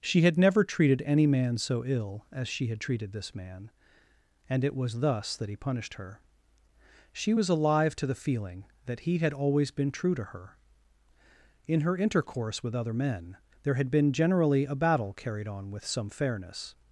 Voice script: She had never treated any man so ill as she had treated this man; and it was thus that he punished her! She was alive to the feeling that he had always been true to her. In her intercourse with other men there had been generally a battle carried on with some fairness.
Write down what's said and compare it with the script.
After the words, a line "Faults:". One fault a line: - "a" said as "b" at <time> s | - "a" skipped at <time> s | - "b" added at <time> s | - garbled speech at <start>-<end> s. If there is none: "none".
She had never treated any man so ill as she had treated this man; and it was thus that he punished her! She was alive to the feeling that he had always been true to her. In her intercourse with other men there had been generally a battle carried on with some fairness.
Faults:
none